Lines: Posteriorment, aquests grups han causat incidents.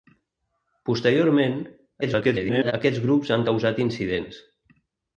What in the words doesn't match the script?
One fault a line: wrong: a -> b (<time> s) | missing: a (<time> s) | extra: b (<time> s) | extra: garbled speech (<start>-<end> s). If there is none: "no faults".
extra: garbled speech (2.0-2.7 s)